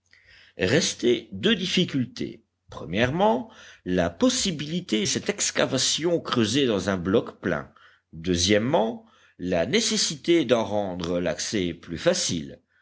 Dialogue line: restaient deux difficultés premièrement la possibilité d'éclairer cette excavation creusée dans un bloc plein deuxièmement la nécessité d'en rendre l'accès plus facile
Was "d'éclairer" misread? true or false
true